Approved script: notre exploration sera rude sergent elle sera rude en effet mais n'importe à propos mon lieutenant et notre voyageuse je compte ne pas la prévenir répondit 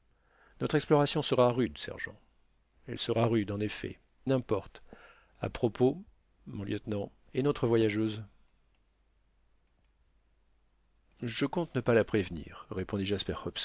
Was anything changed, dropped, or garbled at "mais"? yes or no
yes